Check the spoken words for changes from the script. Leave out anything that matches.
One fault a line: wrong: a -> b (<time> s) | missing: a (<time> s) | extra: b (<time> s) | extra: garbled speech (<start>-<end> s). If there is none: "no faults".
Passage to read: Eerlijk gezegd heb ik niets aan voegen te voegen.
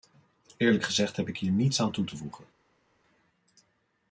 extra: hier (1.4 s)
wrong: voegen -> toe (1.9 s)